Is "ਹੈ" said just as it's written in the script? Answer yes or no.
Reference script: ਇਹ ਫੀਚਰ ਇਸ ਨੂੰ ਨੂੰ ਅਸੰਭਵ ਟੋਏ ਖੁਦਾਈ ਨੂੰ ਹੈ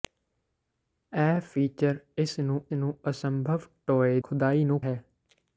yes